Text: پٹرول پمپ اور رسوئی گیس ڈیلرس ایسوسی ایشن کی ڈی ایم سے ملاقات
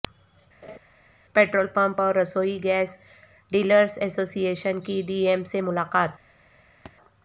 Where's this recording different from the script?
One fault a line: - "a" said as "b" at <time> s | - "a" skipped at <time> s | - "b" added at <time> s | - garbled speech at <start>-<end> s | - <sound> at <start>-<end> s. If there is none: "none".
- laugh at 0.6-0.8 s
- thud at 6.9-7.0 s